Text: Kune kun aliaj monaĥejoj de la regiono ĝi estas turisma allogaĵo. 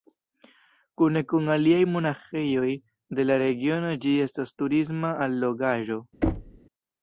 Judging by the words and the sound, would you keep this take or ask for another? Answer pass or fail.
fail